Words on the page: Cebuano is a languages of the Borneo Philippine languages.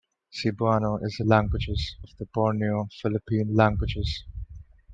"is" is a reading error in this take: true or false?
false